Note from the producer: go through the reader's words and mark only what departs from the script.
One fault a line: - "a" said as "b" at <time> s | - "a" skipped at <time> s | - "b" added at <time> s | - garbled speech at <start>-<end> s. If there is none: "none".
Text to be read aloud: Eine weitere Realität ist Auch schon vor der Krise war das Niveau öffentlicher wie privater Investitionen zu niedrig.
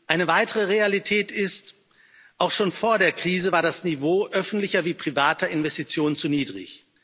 none